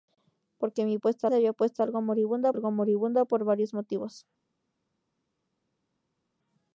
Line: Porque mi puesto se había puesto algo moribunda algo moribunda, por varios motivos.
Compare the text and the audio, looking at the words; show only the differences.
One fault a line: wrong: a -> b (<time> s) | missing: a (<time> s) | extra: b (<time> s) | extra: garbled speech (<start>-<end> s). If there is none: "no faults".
no faults